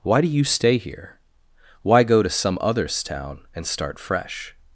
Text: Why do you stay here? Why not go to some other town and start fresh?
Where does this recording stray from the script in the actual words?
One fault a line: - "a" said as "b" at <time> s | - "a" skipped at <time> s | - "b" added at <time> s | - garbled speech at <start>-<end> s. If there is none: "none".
- "not" skipped at 2.0 s
- "other" said as "others" at 2.6 s